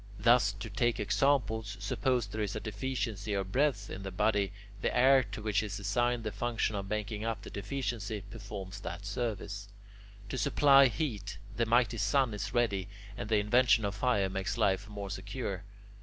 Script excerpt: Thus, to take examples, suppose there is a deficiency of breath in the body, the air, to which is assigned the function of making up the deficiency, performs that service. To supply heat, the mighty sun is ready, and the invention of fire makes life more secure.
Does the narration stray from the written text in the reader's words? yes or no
no